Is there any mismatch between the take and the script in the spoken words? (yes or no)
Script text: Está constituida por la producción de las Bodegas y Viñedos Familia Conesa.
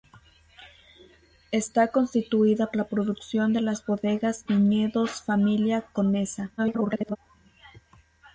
yes